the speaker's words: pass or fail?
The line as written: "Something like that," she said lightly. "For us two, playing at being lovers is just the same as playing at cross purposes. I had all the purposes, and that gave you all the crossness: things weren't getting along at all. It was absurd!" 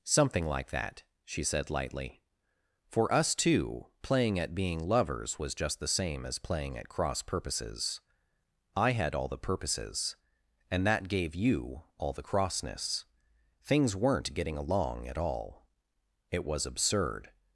fail